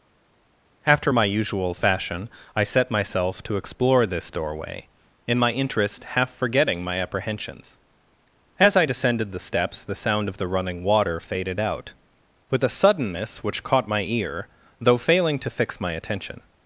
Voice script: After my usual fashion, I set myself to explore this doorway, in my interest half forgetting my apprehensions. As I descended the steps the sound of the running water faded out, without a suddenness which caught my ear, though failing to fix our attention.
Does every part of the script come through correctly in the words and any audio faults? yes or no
no